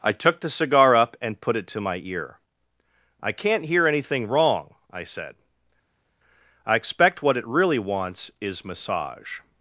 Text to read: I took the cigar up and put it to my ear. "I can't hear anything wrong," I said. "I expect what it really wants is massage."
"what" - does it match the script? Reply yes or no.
yes